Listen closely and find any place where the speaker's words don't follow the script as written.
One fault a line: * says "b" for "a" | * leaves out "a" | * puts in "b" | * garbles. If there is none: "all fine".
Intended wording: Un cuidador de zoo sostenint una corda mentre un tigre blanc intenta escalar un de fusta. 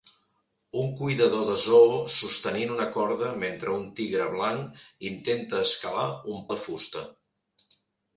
all fine